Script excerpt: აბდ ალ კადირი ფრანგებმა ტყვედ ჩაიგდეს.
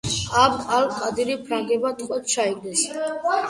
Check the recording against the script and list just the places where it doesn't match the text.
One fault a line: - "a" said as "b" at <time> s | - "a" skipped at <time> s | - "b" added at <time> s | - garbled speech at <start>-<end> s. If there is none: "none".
none